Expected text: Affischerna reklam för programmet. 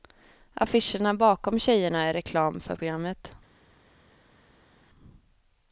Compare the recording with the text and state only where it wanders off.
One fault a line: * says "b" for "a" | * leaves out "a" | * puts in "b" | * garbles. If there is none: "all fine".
* puts in "bakom tjejerna är"